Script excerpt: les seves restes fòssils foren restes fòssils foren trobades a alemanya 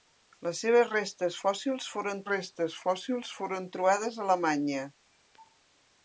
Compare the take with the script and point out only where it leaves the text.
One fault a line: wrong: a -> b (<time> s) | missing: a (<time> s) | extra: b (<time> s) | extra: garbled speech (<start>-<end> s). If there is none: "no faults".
no faults